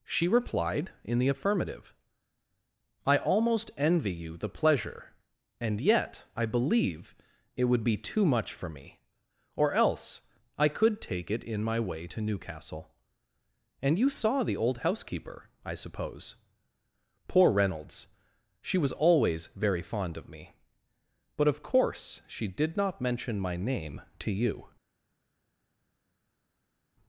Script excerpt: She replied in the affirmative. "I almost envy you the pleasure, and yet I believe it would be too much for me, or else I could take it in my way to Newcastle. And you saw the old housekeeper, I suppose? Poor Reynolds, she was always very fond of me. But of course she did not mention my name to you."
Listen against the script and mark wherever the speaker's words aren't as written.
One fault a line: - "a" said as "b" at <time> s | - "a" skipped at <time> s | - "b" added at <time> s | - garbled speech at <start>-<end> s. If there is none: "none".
none